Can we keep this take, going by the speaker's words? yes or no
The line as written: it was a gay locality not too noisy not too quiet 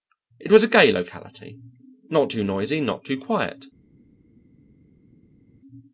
yes